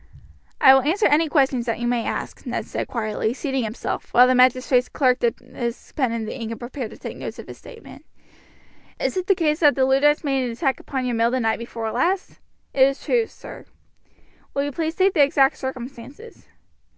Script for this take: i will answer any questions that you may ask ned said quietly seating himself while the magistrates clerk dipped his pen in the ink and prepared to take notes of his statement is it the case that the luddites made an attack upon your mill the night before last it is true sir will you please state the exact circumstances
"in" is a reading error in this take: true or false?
false